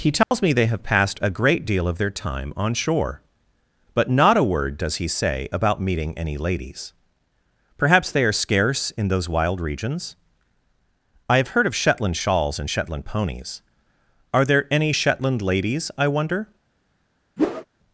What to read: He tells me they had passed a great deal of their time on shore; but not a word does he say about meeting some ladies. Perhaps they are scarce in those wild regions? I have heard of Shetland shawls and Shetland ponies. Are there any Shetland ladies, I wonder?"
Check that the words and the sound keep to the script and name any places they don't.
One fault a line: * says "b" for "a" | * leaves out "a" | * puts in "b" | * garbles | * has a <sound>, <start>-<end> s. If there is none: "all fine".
* has a dropout, 0.2-0.3 s
* says "have" for "had"
* says "any" for "some"
* has a whoosh, 17.4-17.7 s